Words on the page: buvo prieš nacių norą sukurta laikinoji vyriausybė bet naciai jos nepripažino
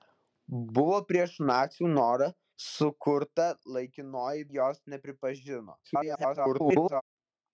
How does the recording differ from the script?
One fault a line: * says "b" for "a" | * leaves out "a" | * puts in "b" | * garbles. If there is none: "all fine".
* leaves out "vyriausybė bet naciai"
* garbles